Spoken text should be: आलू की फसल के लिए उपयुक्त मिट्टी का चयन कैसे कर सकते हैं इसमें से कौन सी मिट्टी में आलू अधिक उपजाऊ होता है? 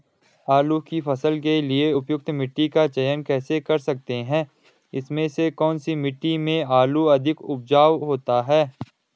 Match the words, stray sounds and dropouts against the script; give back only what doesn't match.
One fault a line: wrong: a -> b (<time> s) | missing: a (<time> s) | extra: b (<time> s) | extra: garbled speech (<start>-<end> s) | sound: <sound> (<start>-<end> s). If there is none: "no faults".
no faults